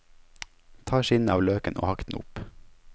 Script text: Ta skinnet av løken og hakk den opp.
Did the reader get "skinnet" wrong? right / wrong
right